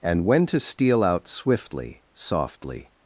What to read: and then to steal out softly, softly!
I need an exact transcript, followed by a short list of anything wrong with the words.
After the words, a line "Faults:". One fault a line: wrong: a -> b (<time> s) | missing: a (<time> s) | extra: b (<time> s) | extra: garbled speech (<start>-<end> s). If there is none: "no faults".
and when to steal out swiftly, softly!
Faults:
wrong: then -> when (0.2 s)
wrong: softly -> swiftly (1.3 s)